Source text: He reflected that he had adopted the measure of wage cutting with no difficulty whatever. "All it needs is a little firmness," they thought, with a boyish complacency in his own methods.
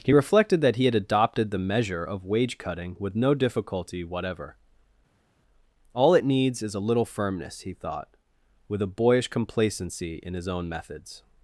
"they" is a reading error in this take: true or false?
true